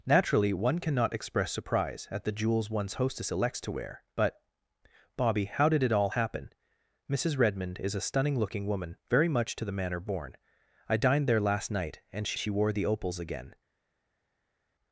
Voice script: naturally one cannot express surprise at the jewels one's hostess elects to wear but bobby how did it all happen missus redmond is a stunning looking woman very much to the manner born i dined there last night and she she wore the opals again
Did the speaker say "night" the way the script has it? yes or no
yes